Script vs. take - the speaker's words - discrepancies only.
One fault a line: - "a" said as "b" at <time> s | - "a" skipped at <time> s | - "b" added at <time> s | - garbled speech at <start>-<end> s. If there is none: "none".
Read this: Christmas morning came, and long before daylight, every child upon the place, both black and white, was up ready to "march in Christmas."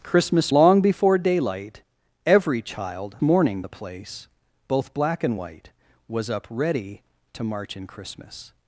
- "morning came and" skipped at 0.5 s
- "upon" said as "morning" at 3.2 s